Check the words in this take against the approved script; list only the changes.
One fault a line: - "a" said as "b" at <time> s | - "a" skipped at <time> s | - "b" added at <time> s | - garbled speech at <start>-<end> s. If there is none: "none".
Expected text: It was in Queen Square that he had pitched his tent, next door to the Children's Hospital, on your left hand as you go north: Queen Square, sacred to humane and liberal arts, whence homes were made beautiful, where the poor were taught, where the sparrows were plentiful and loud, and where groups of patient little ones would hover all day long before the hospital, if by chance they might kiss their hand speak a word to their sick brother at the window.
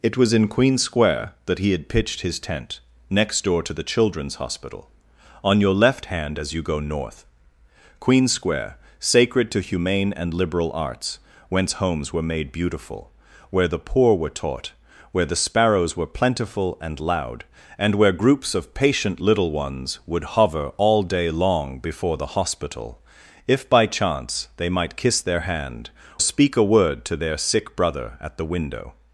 none